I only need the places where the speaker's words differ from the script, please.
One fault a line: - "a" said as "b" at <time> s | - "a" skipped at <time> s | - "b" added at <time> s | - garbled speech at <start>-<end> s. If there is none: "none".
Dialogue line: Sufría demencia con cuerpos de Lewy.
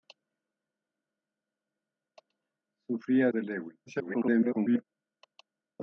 - "demencia con cuerpos" skipped at 3.3 s
- garbled speech at 3.9-4.8 s